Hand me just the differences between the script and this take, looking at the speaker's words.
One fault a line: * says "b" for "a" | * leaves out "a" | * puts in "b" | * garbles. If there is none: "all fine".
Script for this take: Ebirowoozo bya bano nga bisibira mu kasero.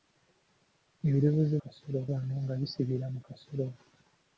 * says "kasero" for "bya"